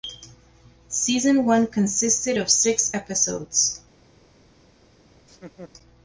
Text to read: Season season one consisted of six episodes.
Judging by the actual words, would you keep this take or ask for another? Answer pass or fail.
fail